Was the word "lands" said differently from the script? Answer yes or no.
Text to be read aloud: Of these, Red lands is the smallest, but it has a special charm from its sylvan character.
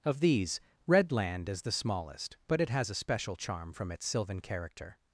yes